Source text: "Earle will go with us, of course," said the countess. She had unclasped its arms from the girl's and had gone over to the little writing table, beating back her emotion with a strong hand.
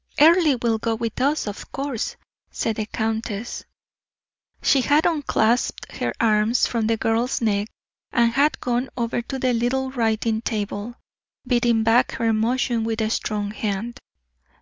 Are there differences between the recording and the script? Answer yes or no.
yes